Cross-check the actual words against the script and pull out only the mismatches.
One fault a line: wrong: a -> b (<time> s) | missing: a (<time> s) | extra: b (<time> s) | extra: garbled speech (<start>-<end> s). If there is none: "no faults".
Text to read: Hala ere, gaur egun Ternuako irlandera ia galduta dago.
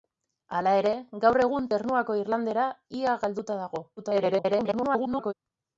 extra: garbled speech (4.0-5.3 s)